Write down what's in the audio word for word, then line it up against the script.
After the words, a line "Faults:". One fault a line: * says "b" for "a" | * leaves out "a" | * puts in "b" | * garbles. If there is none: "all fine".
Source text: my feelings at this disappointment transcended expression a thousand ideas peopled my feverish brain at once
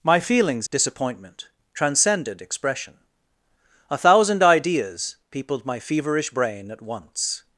my feelings disappointment transcended expression a thousand ideas peopled my feverish brain at once
Faults:
* leaves out "at this"